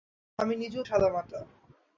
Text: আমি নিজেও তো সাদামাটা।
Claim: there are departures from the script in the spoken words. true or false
true